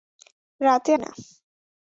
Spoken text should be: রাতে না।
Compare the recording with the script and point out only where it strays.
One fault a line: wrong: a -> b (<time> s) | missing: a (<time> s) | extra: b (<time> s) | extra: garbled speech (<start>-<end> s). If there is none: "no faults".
no faults